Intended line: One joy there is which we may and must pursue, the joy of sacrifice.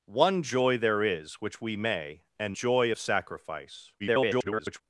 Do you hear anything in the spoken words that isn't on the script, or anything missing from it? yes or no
yes